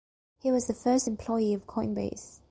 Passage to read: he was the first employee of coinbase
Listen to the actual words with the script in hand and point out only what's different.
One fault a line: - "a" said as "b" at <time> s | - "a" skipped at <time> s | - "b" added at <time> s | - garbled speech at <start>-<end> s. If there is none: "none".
none